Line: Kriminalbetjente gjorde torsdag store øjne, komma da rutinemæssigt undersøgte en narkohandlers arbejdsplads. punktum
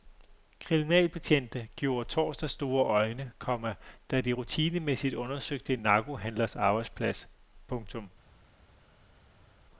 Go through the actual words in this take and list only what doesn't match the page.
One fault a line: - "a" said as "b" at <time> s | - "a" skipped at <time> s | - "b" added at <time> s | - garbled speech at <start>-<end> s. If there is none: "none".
- "de" added at 4.2 s